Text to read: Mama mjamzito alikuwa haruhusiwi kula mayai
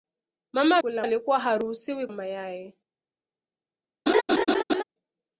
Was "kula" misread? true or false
true